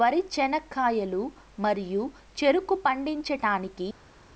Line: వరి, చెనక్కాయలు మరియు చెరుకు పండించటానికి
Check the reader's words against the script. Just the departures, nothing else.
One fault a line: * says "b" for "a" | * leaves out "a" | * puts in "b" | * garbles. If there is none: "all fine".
all fine